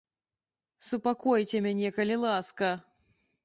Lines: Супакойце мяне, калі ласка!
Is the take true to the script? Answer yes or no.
yes